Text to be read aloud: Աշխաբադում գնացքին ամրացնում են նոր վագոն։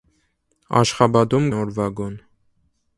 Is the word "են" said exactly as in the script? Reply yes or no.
no